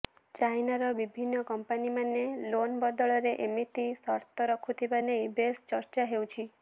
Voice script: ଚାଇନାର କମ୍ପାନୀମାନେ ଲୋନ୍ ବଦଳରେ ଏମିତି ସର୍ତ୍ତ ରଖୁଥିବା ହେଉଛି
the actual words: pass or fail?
fail